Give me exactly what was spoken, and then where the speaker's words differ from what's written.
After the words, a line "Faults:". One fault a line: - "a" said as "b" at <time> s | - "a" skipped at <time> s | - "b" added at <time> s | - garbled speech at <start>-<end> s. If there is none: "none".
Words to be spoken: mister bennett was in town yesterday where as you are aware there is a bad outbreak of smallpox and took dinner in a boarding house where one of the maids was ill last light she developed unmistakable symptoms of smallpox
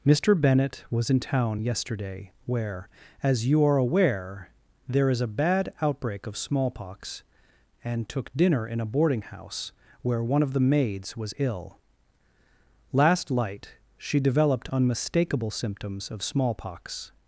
mister bennett was in town yesterday where as you are aware there is a bad outbreak of smallpox and took dinner in a boarding house where one of the maids was ill last light she developed unmistakable symptoms of smallpox
Faults:
none